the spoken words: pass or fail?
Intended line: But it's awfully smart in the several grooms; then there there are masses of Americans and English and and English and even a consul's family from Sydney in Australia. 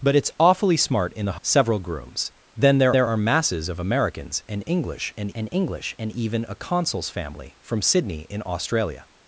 pass